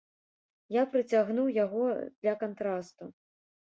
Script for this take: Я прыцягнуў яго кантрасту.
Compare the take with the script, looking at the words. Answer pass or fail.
fail